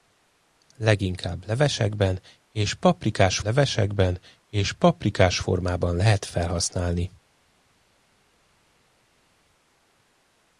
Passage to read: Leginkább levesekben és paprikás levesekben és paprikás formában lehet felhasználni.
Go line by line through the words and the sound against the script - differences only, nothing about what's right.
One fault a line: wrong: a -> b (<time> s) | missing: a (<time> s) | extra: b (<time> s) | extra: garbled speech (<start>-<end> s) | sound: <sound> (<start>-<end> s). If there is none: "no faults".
no faults